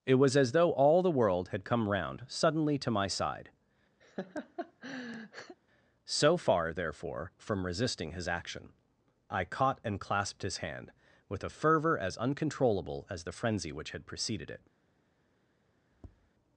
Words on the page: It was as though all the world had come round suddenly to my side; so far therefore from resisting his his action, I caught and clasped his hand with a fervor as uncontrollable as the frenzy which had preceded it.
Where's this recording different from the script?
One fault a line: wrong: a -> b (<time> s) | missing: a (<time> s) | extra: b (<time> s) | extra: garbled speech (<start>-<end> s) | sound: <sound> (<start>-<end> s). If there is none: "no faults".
sound: laugh (4.0-5.6 s)
missing: his (8.3 s)
sound: tap (15.9-16.3 s)